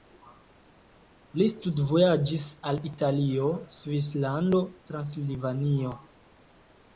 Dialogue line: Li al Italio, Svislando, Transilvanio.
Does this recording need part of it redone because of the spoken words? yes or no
yes